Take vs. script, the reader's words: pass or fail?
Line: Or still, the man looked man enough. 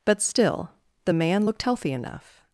fail